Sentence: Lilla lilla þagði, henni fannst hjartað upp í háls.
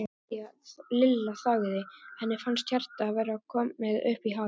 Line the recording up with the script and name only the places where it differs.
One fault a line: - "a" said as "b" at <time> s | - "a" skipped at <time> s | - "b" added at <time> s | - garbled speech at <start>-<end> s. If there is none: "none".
- "lilla" skipped at 1.3 s
- "vera komið" added at 3.2 s